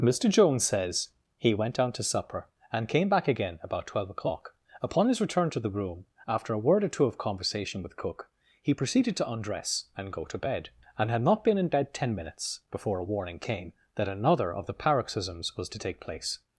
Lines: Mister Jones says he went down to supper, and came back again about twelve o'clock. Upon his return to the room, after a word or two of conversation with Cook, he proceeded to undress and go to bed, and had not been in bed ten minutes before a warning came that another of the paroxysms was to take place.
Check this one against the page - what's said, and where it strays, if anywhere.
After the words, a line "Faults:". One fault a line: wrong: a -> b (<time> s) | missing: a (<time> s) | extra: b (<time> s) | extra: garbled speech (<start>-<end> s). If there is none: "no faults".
Mister Jones says he went down to supper, and came back again about twelve o'clock. Upon his return to the room, after a word or two of conversation with Cook, he proceeded to undress and go to bed, and had not been in bed ten minutes before a warning came that another of the paroxysms was to take place.
Faults:
no faults